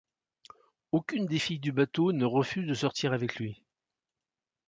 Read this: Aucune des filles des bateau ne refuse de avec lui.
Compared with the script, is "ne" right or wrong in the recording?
right